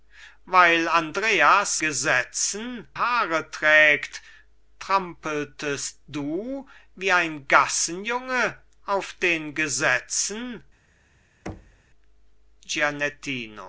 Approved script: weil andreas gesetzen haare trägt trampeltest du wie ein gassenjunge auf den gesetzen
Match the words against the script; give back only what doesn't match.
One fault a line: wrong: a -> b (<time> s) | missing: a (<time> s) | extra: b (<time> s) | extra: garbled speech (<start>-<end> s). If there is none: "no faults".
no faults